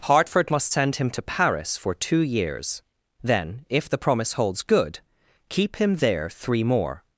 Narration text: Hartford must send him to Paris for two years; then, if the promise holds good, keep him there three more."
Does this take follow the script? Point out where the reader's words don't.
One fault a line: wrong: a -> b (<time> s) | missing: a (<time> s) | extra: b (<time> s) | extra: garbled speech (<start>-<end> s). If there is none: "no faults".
no faults